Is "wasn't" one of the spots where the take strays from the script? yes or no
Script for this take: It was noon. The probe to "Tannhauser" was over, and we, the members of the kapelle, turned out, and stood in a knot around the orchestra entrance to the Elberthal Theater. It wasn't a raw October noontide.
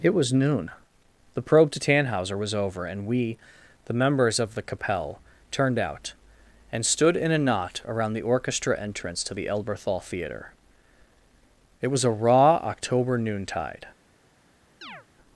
yes